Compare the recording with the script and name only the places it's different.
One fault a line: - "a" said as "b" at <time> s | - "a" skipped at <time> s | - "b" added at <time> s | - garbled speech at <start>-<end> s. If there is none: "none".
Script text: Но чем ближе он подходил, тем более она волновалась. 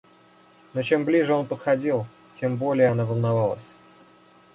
none